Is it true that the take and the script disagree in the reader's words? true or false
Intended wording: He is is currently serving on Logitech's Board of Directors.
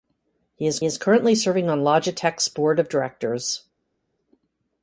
false